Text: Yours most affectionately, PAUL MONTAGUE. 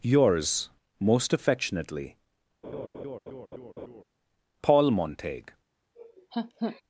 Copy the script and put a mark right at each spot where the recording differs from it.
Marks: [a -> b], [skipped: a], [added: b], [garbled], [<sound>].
Yours most affectionately, [laugh] PAUL MONTAGUE. [laugh]